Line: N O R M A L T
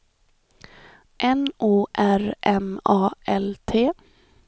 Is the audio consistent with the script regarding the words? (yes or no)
yes